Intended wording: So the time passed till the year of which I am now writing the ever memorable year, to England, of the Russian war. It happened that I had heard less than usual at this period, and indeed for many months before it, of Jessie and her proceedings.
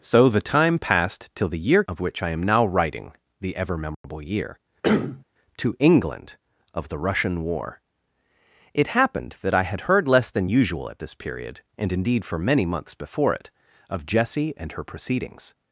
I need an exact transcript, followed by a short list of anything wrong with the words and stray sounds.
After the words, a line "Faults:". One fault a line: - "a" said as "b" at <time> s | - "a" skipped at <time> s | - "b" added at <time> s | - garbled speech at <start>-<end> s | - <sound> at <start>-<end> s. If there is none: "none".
So the time passed till the year of which I am now writing the ever memorable year, to England, of the Russian war. It happened that I had heard less than usual at this period, and indeed for many months before it, of Jessie and her proceedings.
Faults:
- dropout at 3.9-4.0 s
- cough at 4.8-5.2 s